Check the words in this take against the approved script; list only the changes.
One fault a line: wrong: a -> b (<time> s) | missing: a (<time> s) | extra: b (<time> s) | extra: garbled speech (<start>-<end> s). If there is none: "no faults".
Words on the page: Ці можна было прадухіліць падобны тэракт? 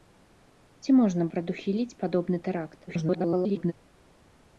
missing: было (1.3 s)
extra: garbled speech (2.9-3.7 s)